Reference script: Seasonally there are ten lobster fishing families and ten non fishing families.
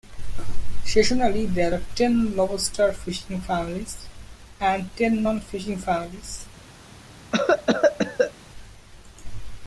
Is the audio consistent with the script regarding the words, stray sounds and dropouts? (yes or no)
no